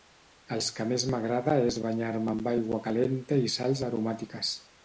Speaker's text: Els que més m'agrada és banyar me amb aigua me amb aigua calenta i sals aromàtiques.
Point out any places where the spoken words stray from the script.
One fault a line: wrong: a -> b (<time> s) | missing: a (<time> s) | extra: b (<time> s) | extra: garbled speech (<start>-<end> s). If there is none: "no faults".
missing: me amb aigua (2.8 s)